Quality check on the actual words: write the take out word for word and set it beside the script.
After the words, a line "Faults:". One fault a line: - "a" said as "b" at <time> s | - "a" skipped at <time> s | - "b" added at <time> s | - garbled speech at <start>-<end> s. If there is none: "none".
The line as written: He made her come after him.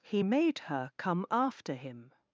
He made her come after him.
Faults:
none